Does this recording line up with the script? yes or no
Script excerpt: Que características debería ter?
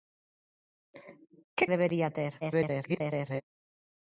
no